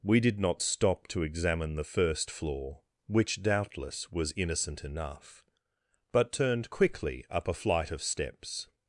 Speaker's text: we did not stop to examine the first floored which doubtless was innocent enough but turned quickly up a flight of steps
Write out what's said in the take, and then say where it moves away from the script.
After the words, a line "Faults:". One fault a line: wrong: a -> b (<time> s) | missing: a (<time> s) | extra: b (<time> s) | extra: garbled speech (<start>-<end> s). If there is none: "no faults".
we did not stop to examine the first floor which doubtless was innocent enough but turned quickly up a flight of steps
Faults:
wrong: floored -> floor (2.3 s)